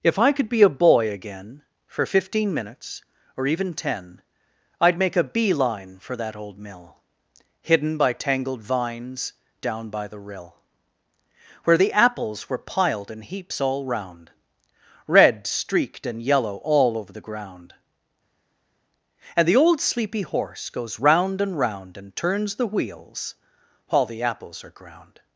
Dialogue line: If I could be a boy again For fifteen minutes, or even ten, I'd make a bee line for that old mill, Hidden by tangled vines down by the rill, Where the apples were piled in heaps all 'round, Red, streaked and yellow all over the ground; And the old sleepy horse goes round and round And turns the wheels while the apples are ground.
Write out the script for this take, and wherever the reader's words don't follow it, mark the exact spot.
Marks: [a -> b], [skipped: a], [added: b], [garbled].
If I could be a boy again For fifteen minutes, or even ten, I'd make a bee line for that old mill, Hidden by tangled vines down by the rill, Where the apples were piled in heaps all 'round, Red, streaked and yellow all over the ground; And the old sleepy horse goes round and round And turns the wheels while the apples are ground.